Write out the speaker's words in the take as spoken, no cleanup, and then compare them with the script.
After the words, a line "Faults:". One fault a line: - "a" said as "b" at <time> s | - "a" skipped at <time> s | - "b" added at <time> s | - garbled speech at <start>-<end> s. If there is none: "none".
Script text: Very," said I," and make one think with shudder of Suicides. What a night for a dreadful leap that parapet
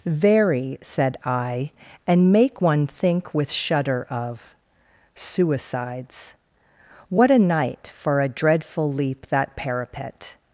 Very," said I," and make one think with shudder of Suicides. What a night for a dreadful leap that parapet
Faults:
none